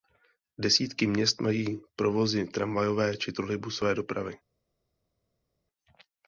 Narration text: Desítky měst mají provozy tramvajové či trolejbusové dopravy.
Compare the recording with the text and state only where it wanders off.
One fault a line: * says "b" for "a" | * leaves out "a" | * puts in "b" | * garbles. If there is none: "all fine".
all fine